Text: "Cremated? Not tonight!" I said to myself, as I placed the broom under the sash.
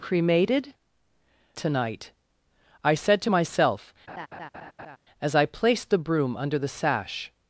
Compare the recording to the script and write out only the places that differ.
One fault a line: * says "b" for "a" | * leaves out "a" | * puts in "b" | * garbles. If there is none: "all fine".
* leaves out "Not"